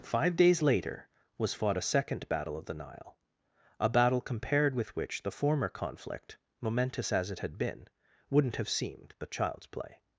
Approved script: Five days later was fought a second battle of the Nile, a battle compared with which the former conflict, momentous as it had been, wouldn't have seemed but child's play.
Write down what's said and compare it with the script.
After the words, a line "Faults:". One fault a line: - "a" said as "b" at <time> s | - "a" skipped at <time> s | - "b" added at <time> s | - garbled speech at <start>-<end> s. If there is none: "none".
Five days later was fought a second battle of the Nile, a battle compared with which the former conflict, momentous as it had been, wouldn't have seemed but child's play.
Faults:
none